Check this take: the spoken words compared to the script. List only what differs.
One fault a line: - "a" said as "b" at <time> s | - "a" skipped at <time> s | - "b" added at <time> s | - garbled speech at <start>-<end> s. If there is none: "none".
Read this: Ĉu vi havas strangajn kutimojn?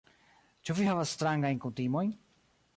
none